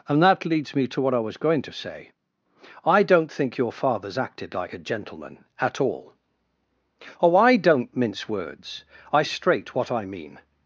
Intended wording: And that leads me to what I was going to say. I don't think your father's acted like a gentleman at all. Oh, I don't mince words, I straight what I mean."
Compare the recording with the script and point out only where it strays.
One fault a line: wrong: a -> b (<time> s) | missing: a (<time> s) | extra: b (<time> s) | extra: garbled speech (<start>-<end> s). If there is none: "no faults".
no faults